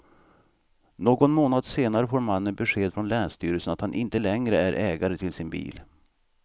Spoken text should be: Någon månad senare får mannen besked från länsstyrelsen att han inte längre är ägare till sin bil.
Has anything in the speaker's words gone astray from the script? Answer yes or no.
no